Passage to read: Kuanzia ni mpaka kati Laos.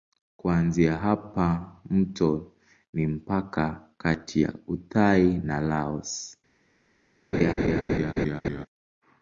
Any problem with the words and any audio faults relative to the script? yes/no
yes